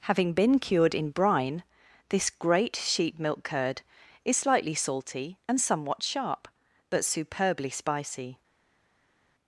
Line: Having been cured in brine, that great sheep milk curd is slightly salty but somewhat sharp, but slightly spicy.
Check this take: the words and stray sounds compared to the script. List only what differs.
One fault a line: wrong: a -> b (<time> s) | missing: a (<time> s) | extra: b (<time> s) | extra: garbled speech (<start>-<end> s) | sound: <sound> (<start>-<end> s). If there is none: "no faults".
wrong: that -> this (2.1 s)
wrong: but -> and (5.5 s)
wrong: slightly -> superbly (7.0 s)